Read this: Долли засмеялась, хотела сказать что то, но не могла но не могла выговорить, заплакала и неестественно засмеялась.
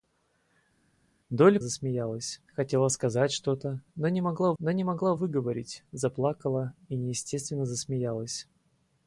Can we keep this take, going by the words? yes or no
yes